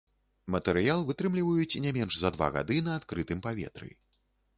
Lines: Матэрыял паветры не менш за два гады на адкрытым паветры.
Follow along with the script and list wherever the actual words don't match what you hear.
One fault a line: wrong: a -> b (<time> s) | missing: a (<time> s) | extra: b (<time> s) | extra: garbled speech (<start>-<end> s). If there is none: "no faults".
wrong: паветры -> вытрымліваюць (1.1 s)